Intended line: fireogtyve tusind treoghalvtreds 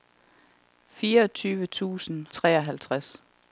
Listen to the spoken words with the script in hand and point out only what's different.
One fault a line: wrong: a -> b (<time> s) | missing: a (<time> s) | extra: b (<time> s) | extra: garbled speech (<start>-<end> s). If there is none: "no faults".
no faults